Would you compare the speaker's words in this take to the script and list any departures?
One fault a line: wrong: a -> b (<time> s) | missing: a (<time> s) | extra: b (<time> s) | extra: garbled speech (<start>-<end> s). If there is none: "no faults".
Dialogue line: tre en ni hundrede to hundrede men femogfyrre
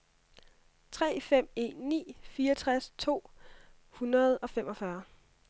extra: fem (1.2 s)
wrong: hundrede -> fireogtres (2.2 s)
wrong: men -> og (4.4 s)